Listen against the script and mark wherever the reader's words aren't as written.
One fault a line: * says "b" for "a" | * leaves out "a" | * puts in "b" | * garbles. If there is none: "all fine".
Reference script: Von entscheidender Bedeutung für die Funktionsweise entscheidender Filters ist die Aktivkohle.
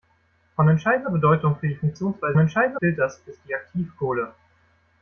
all fine